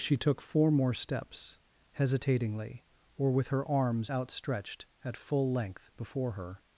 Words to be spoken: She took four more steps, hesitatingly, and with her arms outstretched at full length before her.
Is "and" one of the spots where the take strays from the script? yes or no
yes